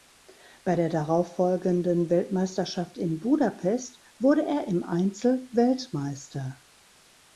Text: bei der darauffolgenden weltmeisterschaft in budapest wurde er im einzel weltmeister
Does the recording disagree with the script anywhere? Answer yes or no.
no